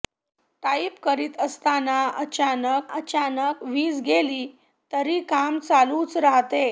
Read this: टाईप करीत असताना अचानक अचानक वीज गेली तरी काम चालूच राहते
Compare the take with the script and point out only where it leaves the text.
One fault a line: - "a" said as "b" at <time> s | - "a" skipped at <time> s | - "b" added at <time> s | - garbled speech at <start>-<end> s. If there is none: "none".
none